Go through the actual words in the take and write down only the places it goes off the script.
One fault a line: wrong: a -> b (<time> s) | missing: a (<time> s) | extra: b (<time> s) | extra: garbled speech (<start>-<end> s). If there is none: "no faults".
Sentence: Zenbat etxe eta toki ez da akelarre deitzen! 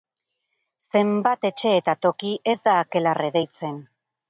no faults